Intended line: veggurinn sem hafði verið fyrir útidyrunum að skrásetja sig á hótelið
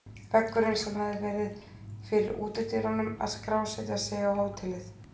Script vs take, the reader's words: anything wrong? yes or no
no